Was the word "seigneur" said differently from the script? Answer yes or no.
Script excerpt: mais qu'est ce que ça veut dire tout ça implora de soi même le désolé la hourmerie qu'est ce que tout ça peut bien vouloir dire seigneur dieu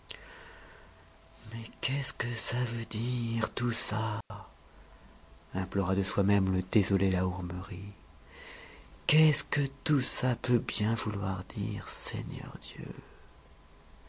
no